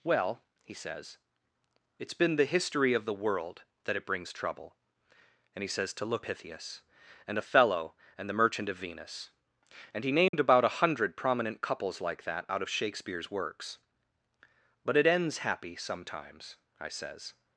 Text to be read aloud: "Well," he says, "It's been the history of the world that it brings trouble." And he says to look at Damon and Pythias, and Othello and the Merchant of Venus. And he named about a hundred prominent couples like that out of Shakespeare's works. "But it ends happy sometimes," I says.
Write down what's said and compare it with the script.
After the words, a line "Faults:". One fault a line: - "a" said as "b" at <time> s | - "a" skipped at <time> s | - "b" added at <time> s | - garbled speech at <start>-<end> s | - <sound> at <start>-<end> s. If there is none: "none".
"Well," he says, "It's been the history of the world that it brings trouble." And he says to look Pythias, and Othello and the Merchant of Venus. And he named about a hundred prominent couples like that out of Shakespeare's works. "But it ends happy sometimes," I says.
Faults:
- "at Damon and" skipped at 6.2 s
- dropout at 10.3-10.3 s